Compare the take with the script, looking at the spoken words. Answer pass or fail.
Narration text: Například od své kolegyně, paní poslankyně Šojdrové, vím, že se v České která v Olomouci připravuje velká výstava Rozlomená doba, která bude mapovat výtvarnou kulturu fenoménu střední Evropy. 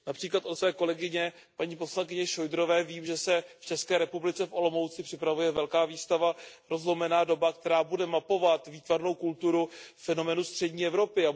fail